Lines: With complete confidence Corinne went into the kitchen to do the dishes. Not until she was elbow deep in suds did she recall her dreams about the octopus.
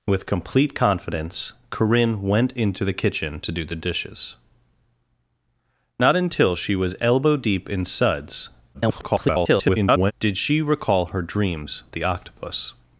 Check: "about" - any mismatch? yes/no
yes